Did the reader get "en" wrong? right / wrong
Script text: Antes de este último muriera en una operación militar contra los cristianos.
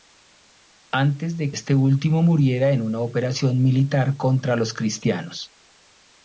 right